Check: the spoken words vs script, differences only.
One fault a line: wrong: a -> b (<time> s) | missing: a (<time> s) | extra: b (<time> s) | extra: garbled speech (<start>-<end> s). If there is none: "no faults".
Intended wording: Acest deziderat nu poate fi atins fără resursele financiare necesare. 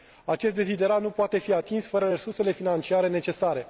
no faults